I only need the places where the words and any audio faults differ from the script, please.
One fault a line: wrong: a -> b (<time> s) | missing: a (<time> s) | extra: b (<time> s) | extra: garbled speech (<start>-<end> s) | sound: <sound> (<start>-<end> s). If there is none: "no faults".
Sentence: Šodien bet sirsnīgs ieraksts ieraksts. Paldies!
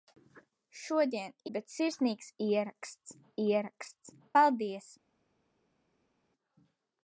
no faults